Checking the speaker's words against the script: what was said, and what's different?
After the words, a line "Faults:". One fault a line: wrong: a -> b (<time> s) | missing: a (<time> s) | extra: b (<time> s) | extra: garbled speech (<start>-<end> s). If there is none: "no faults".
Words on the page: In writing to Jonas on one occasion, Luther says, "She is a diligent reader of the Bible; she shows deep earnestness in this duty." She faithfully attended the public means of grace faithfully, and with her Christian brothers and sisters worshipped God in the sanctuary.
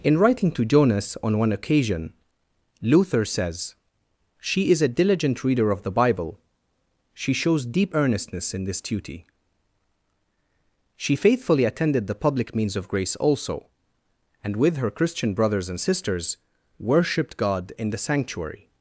In writing to Jonas on one occasion, Luther says, "She is a diligent reader of the Bible; she shows deep earnestness in this duty." She faithfully attended the public means of grace also, and with her Christian brothers and sisters worshipped God in the sanctuary.
Faults:
wrong: faithfully -> also (13.2 s)